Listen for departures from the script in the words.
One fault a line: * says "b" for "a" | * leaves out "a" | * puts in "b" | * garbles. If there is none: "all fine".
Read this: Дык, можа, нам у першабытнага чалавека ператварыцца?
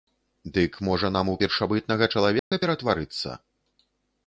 all fine